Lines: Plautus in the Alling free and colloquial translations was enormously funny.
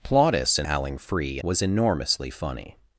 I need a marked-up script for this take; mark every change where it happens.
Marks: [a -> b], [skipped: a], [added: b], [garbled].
Plautus in [skipped: the] Alling free [skipped: and colloquial translations] was enormously funny.